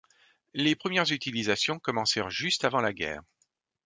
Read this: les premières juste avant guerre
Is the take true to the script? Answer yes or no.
no